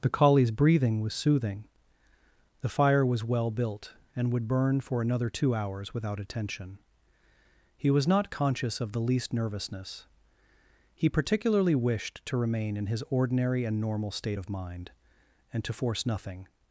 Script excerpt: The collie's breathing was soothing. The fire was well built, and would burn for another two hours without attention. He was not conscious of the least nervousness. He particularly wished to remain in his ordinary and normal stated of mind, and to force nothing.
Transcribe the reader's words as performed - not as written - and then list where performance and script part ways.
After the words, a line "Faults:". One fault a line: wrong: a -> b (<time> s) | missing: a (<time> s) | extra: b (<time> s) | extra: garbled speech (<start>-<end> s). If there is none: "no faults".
The collie's breathing was soothing. The fire was well built, and would burn for another two hours without attention. He was not conscious of the least nervousness. He particularly wished to remain in his ordinary and normal state of mind, and to force nothing.
Faults:
wrong: stated -> state (14.1 s)